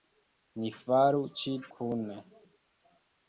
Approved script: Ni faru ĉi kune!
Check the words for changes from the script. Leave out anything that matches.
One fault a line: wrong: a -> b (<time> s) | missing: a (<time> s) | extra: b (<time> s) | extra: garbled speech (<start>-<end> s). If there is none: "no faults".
no faults